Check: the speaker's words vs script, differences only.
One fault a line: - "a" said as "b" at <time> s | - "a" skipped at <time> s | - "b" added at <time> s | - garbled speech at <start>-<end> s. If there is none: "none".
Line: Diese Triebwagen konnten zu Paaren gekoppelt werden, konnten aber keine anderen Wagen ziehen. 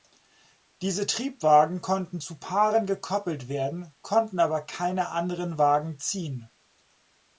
none